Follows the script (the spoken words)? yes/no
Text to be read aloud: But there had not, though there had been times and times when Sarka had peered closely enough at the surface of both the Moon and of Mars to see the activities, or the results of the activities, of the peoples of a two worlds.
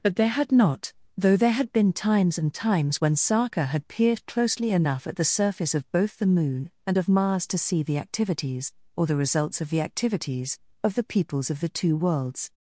no